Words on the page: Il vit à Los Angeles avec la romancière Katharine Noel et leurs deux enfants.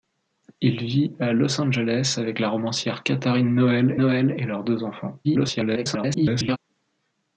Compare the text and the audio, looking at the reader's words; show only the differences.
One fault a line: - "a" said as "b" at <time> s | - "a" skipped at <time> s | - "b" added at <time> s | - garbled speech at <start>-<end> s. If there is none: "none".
- "Noel" added at 3.9 s
- garbled speech at 5.2-6.6 s